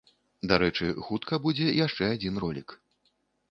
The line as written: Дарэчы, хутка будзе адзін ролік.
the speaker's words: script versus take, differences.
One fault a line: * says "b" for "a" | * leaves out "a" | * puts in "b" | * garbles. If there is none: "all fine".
* puts in "яшчэ"